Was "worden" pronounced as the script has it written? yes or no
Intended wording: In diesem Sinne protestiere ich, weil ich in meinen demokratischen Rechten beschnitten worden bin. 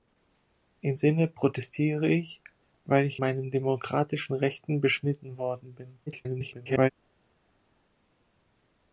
yes